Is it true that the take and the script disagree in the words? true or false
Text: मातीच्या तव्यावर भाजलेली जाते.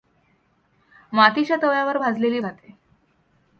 false